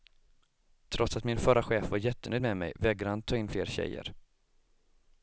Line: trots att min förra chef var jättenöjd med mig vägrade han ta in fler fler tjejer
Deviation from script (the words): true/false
true